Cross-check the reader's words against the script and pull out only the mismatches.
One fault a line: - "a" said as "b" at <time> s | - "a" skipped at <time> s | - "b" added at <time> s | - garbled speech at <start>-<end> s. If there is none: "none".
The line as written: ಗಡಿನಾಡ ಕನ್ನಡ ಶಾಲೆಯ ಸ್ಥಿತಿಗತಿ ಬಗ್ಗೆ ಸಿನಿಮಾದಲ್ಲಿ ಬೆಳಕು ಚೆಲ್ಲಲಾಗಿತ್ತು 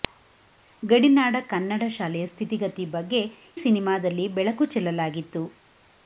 none